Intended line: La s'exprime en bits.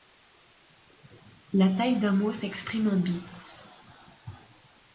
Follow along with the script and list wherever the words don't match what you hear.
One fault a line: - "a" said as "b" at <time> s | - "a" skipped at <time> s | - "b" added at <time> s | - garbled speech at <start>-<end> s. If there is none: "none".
- "taille d'un mot" added at 1.7 s